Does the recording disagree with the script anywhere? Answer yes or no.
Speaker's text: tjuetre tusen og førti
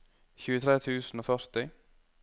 no